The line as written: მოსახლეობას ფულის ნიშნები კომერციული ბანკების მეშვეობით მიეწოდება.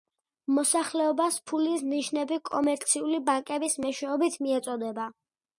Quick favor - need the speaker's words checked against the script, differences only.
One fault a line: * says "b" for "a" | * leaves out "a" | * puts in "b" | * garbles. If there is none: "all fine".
all fine